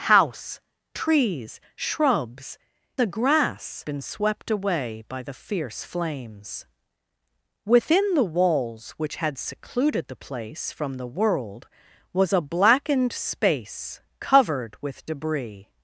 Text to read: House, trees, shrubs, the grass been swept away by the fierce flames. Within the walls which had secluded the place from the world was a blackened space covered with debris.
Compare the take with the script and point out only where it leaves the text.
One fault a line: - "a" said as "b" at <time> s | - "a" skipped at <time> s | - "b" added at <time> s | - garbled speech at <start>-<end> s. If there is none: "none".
none